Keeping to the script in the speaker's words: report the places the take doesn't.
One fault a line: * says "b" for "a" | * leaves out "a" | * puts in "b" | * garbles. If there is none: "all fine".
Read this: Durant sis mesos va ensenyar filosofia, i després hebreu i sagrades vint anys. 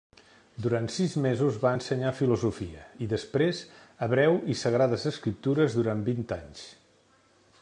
* puts in "escriptures durant"